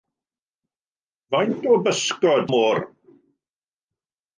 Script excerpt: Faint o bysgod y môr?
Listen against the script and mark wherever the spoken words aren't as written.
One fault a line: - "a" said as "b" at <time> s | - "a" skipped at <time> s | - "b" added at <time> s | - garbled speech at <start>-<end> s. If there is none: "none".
none